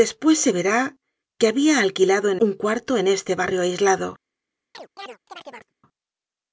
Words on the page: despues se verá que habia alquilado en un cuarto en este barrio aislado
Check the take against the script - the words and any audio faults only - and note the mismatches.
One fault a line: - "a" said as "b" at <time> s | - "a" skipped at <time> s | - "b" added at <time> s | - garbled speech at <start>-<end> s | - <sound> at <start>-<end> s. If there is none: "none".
- chirp at 4.7-5.7 s